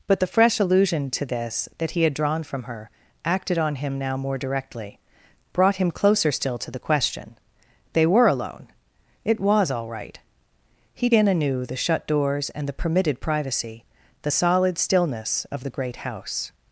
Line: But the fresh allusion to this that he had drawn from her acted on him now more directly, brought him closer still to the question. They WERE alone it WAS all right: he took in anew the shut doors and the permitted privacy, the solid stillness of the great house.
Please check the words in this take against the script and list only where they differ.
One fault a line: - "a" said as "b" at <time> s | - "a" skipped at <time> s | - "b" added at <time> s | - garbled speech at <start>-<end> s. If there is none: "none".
- "took" skipped at 11.1 s